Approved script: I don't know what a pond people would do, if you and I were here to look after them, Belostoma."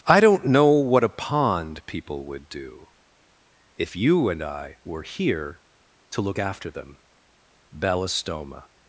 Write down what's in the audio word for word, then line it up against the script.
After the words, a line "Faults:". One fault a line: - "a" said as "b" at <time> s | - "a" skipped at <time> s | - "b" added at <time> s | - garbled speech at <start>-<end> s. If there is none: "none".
I don't know what a pond people would do, if you and I were here to look after them, Belostoma."
Faults:
none